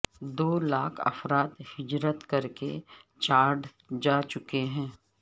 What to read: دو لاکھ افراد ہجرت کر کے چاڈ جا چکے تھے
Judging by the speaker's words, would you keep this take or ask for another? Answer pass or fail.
fail